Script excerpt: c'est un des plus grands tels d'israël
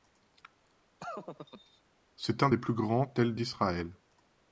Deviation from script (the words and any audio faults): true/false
true